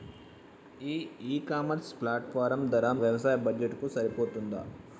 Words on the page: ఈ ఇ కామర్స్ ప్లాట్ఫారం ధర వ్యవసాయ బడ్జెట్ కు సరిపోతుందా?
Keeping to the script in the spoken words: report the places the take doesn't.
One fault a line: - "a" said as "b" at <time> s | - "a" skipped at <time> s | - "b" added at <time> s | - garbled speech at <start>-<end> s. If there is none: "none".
none